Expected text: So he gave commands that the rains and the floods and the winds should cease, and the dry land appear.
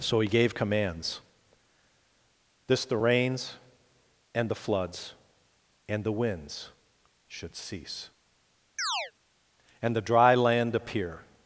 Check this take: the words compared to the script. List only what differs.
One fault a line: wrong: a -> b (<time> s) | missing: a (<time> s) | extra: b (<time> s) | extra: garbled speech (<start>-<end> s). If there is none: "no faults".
wrong: that -> this (2.7 s)